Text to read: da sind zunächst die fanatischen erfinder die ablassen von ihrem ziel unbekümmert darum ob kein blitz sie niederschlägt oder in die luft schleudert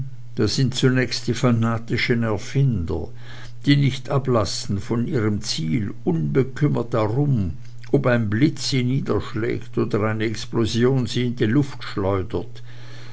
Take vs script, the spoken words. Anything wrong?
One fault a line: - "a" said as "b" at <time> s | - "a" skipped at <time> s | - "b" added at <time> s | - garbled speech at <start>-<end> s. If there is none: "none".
- "nicht" added at 3.8 s
- "kein" said as "ein" at 8.1 s
- "eine explosion sie" added at 10.0 s